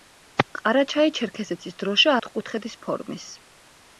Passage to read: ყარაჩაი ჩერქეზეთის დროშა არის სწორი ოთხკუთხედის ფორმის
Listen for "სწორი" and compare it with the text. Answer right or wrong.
wrong